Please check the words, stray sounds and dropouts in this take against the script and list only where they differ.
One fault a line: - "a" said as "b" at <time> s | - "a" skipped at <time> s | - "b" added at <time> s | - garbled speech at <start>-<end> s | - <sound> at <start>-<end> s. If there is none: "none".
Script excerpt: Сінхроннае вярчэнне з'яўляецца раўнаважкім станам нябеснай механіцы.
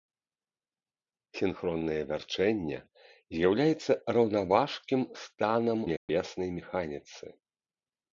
- dropout at 6.0-6.1 s